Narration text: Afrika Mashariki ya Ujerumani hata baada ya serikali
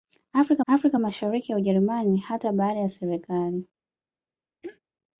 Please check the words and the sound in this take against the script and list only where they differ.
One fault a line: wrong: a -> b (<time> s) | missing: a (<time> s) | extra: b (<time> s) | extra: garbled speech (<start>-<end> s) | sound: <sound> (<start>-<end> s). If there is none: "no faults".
extra: afrika (0.7 s)
sound: throat clearing (4.6-4.8 s)